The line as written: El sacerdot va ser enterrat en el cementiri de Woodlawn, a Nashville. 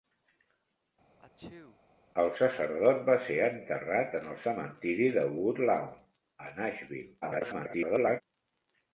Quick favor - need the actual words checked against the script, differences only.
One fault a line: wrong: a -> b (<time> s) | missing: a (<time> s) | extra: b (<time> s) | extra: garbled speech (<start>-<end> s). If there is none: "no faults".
extra: garbled speech (7.2-8.2 s)